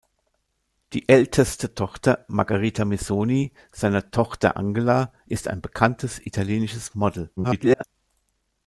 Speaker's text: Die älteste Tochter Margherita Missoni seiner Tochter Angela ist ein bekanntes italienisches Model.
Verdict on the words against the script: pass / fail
fail